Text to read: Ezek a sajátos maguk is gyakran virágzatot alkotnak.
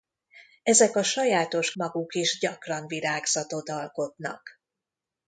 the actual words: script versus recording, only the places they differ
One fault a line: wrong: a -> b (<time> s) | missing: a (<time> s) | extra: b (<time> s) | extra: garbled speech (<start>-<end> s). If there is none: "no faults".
no faults